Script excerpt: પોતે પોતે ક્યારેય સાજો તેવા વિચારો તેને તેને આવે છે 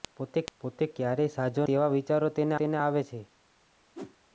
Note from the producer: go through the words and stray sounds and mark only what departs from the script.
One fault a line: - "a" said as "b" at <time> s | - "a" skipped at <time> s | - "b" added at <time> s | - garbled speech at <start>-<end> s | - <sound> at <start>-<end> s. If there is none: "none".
- whoosh at 3.9-4.2 s